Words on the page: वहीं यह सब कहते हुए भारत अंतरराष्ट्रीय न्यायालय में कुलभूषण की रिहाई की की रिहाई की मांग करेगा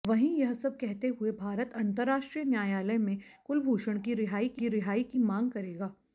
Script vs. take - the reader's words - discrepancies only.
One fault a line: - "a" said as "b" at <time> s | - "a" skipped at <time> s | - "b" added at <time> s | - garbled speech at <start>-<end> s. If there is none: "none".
none